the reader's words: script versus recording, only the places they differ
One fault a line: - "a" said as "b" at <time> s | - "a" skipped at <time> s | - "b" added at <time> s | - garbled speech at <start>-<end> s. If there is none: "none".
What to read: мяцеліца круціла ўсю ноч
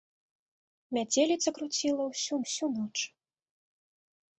- "ўсю" added at 2.4 s